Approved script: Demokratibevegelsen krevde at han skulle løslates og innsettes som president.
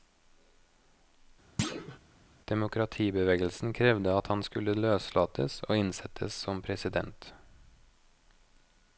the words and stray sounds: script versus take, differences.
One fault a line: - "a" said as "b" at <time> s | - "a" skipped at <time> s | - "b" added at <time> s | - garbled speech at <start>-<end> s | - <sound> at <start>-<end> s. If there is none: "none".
- thud at 1.6-2.0 s